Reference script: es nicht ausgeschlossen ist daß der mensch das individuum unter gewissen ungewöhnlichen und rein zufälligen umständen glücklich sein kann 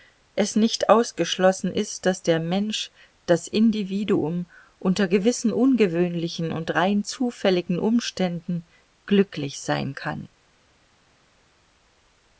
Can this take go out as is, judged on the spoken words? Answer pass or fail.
pass